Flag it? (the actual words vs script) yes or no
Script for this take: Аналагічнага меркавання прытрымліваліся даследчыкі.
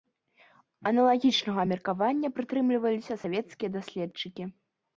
yes